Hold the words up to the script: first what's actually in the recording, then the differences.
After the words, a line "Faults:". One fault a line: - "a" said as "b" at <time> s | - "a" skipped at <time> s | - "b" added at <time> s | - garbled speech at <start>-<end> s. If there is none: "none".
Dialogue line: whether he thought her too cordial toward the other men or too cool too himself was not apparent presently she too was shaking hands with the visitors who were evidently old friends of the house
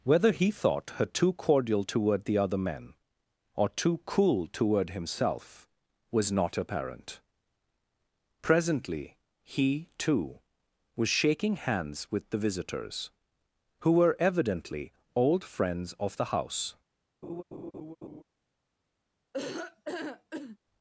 whether he thought her too cordial toward the other men or too cool toward himself was not apparent presently he too was shaking hands with the visitors who were evidently old friends of the house
Faults:
- "too" said as "toward" at 4.5 s
- "she" said as "he" at 9.4 s